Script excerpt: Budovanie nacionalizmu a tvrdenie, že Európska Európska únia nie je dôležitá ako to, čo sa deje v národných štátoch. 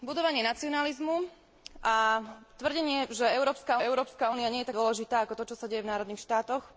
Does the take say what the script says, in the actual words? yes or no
yes